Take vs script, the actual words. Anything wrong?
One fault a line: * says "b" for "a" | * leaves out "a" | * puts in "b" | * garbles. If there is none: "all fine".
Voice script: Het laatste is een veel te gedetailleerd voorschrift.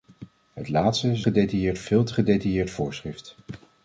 * says "gedetailleerd" for "een"